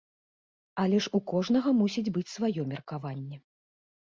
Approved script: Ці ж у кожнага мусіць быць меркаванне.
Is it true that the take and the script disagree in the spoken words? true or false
true